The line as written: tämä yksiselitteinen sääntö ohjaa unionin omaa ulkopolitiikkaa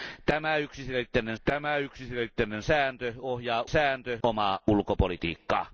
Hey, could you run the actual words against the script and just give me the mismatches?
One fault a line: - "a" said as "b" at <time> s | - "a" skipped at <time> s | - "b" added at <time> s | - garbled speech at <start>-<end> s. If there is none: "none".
- "tämä yksiselitteinen" added at 1.4 s
- "unionin" said as "sääntö" at 3.7 s